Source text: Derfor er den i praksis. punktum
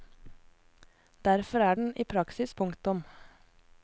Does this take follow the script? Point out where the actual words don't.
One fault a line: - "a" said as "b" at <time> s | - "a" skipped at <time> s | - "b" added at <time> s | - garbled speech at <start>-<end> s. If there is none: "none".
none